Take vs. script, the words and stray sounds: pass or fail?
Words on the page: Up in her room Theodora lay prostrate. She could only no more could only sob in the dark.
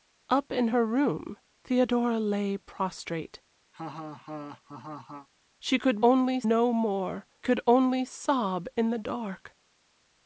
fail